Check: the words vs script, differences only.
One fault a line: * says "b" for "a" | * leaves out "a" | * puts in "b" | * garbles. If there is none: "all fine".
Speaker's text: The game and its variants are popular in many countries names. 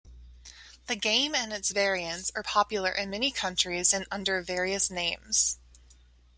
* puts in "and under various"